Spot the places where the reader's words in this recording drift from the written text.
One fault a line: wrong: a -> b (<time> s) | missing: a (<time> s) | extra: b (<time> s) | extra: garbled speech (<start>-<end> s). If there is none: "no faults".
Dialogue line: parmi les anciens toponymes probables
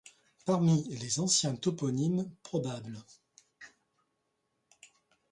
no faults